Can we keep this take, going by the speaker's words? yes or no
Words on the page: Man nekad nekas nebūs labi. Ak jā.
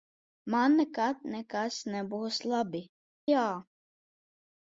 no